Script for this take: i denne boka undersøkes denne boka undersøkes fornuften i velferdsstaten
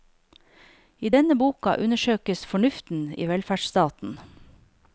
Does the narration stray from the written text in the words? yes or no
yes